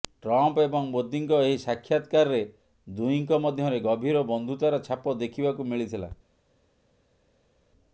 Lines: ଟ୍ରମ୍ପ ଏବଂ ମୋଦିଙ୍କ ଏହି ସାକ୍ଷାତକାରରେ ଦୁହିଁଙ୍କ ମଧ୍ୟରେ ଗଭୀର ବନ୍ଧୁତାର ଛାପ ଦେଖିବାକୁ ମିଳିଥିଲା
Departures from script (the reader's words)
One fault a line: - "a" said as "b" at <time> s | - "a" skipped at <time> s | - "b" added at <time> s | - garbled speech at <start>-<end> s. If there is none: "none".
none